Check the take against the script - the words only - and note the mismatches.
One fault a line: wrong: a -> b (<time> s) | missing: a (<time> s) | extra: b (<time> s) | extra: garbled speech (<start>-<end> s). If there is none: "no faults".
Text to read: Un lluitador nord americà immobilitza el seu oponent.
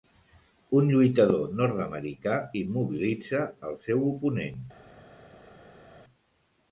no faults